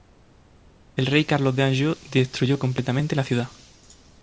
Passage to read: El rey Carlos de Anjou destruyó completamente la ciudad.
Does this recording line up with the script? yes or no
yes